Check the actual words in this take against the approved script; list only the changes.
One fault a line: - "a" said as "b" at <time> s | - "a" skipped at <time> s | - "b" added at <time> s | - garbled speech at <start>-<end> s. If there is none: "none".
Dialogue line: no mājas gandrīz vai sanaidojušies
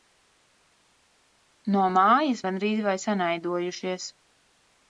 none